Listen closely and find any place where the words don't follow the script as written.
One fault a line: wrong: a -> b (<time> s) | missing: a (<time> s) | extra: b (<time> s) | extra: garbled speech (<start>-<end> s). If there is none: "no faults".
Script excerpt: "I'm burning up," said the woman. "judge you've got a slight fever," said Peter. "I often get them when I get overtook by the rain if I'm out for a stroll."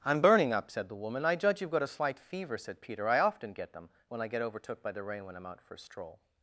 extra: I (1.2 s)
wrong: if -> when (5.2 s)